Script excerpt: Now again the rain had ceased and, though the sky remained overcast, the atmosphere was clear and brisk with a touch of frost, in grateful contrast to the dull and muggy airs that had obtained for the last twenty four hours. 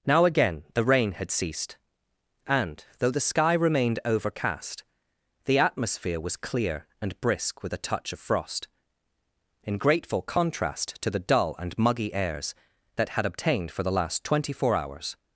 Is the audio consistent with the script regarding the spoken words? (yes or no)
yes